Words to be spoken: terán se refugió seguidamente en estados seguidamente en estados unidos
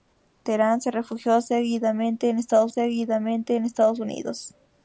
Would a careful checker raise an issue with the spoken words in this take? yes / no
no